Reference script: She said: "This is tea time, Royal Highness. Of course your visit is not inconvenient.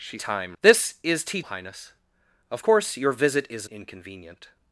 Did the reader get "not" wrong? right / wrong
wrong